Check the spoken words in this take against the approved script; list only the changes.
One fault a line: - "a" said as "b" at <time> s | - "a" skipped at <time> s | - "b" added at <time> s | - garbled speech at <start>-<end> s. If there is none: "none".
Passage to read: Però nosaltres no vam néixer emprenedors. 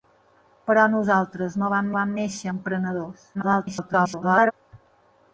- "vam" added at 2.0 s
- garbled speech at 3.3-4.5 s